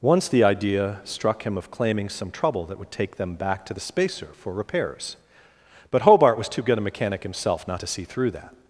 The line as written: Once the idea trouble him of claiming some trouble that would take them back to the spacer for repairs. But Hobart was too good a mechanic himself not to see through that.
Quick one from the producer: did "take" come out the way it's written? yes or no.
yes